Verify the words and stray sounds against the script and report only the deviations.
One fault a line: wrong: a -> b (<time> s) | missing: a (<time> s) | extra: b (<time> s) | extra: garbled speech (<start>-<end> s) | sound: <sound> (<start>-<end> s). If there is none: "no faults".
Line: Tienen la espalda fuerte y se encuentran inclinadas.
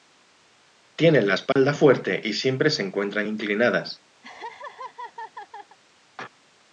sound: dropout (1.5-1.6 s)
extra: siempre (2.3 s)
sound: laugh (4.2-5.8 s)